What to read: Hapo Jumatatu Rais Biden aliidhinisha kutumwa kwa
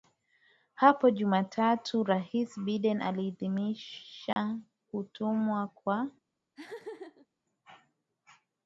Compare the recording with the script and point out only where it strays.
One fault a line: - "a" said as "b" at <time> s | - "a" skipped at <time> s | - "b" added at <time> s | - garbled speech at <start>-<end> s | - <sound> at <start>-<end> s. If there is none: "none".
- dropout at 4.3-4.4 s
- laugh at 6.5-7.3 s